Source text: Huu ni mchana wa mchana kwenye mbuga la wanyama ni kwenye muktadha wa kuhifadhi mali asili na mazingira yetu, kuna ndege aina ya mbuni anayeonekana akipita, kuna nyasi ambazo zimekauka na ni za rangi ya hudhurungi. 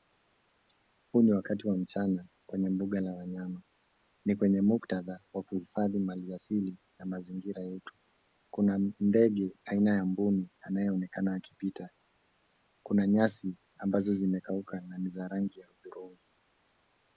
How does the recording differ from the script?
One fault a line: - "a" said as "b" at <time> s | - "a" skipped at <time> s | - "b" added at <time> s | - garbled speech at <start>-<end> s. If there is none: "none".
- "mchana" said as "wakati" at 1.3 s